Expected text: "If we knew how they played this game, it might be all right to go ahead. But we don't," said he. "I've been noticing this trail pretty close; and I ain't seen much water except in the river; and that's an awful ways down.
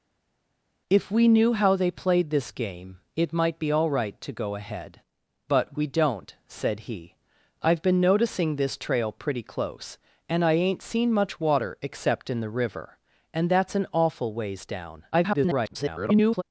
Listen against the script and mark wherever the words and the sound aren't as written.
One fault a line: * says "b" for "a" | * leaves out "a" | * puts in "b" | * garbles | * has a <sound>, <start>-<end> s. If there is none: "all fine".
* garbles